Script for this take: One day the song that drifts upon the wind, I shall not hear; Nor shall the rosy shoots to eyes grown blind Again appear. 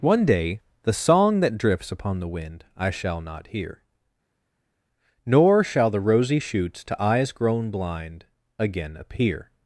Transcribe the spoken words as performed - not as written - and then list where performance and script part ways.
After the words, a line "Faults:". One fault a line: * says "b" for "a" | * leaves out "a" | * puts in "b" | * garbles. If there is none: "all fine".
One day the song that drifts upon the wind, I shall not hear; Nor shall the rosy shoots to eyes grown blind Again appear.
Faults:
all fine